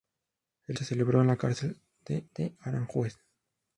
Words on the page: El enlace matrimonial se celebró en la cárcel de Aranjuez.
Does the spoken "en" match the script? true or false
true